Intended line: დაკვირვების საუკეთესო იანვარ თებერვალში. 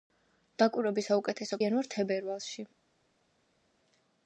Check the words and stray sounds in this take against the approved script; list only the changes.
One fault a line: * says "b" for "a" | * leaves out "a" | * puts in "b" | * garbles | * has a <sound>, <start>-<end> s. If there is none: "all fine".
all fine